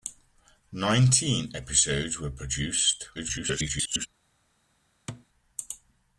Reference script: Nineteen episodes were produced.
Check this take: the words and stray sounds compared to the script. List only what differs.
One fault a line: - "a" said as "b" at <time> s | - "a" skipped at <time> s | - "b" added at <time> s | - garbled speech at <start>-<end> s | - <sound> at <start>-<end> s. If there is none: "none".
- garbled speech at 3.1-4.1 s
- thud at 5.1-5.3 s